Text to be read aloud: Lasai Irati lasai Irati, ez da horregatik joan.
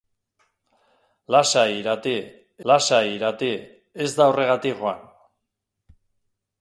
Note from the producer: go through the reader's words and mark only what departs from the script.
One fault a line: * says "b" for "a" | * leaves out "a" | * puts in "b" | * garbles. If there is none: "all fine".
all fine